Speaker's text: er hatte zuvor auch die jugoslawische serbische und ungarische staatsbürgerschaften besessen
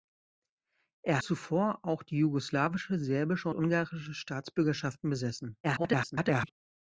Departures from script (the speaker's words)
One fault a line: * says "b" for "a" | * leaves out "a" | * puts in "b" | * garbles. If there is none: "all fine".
* leaves out "hatte"
* leaves out "und"
* garbles